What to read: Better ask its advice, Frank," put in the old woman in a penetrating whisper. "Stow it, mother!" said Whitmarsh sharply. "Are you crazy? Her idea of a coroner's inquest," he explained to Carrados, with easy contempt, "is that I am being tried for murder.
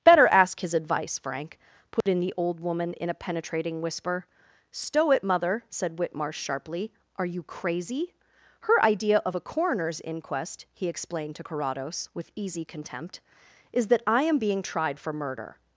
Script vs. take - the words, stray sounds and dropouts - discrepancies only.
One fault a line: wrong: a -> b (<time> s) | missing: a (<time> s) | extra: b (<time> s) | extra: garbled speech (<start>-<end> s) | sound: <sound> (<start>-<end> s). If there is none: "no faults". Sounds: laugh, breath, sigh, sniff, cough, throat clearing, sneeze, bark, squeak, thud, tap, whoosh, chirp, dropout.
wrong: its -> his (0.6 s)
sound: dropout (2.0-2.1 s)